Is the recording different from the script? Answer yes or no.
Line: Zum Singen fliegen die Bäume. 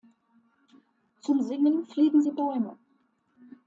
no